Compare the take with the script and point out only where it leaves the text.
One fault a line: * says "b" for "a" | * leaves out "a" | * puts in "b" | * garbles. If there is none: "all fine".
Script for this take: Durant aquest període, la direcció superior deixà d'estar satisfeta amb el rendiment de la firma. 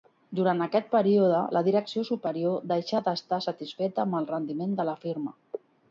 all fine